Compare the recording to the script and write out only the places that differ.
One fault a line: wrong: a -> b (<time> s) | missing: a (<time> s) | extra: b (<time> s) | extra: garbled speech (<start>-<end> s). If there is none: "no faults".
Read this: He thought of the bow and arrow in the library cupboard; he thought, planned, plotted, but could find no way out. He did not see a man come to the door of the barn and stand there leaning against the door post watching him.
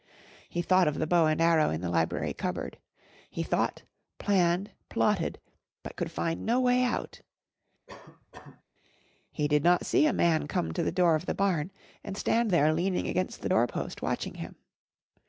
no faults